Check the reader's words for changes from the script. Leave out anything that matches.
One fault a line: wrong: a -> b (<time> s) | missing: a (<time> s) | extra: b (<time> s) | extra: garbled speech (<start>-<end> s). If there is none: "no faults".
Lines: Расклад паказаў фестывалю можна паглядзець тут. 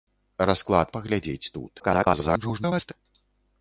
missing: паказаў фестывалю можна (0.9 s)
extra: garbled speech (1.8-2.9 s)